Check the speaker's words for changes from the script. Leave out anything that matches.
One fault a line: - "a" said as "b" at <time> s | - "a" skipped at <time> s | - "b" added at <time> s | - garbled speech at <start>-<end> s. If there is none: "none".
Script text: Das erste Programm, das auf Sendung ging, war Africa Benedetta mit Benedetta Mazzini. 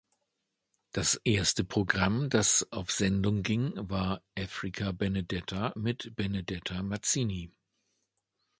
none